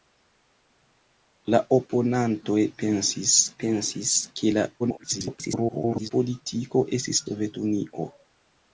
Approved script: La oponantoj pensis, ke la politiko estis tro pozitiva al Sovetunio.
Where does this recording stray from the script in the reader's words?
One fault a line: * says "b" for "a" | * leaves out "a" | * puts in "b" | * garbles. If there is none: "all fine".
* puts in "pensis"
* garbles
* leaves out "tro pozitiva al"